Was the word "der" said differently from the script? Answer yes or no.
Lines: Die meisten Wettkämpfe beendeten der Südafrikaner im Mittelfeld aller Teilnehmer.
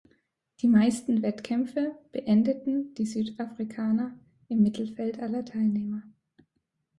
yes